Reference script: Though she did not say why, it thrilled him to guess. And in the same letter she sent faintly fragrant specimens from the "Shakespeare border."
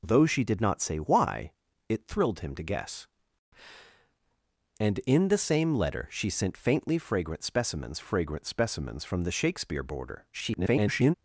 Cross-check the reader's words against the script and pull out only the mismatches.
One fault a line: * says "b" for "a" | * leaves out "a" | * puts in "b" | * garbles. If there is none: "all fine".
* puts in "fragrant specimens"
* garbles